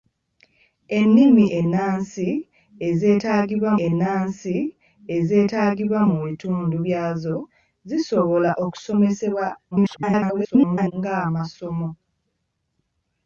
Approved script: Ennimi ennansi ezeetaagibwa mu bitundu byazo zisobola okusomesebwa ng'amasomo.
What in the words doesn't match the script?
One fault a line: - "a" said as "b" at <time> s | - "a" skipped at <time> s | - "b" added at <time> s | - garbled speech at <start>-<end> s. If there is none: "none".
- "ennansi ezeetaagibwa" added at 3.9 s
- garbled speech at 9.7-10.9 s